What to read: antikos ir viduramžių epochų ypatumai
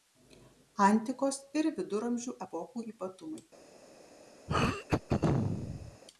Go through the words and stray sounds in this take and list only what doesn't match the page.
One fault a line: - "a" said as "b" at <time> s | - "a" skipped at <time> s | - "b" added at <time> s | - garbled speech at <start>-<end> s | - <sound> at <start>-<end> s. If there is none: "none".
- throat clearing at 4.5-6.0 s